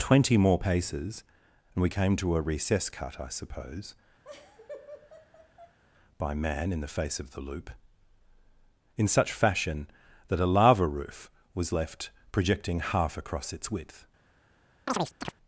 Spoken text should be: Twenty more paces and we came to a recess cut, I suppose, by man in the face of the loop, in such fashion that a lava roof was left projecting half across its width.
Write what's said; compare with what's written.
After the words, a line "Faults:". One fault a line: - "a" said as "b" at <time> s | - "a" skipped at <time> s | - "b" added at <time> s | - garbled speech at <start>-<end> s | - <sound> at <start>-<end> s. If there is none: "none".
Twenty more paces and we came to a recess cut, I suppose, by man in the face of the loop, in such fashion that a lava roof was left projecting half across its width.
Faults:
- laugh at 4.2-5.8 s
- chirp at 14.9-15.3 s